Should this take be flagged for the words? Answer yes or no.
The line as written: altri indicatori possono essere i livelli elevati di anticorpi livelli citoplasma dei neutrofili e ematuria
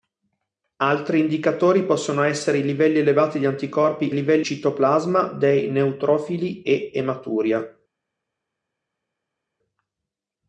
no